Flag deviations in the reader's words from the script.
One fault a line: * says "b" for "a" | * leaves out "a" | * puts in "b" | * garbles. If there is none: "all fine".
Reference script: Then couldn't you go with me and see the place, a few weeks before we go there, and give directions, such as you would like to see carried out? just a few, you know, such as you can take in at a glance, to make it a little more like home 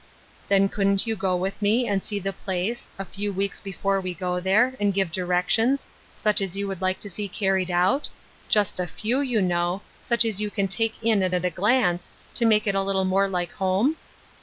* puts in "at"